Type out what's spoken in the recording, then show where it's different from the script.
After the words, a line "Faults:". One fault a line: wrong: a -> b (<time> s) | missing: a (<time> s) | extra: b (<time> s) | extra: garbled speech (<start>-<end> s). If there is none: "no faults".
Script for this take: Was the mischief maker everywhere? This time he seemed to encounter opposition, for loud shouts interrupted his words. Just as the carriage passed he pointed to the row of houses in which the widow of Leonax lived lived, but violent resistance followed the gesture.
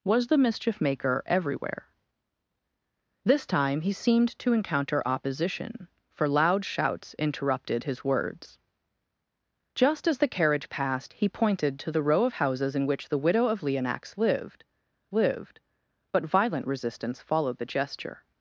Was the mischief maker everywhere? This time he seemed to encounter opposition, for loud shouts interrupted his words. Just as the carriage passed he pointed to the row of houses in which the widow of Leonax lived lived, but violent resistance followed the gesture.
Faults:
no faults